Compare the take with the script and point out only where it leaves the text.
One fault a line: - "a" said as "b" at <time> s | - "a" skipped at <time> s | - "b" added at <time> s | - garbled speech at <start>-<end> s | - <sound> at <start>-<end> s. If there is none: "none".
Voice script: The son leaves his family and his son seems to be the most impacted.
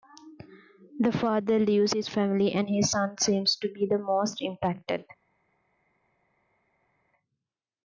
- "son" said as "father" at 1.1 s